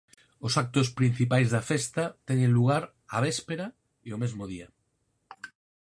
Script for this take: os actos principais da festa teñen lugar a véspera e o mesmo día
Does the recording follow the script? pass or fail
pass